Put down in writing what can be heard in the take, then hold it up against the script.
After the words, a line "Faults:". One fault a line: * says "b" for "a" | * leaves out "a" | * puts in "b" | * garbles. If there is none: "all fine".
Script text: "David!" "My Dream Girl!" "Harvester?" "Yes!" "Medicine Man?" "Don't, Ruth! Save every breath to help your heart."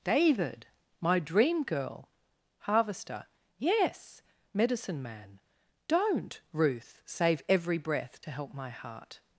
"David!" "My Dream Girl!" "Harvester?" "Yes!" "Medicine Man?" "Don't, Ruth! Save every breath to help my heart."
Faults:
* says "my" for "your"